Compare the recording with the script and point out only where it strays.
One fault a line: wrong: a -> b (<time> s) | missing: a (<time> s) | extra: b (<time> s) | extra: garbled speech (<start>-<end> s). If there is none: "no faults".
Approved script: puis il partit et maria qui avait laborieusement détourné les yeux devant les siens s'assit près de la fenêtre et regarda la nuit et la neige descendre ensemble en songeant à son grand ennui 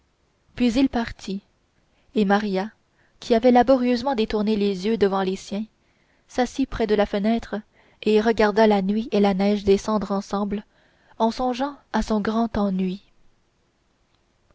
no faults